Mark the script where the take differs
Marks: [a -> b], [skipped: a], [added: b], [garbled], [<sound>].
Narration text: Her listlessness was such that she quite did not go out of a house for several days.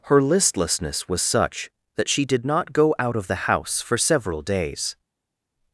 Her listlessness was such that she [skipped: quite] did not go out of [a -> the] house for several days.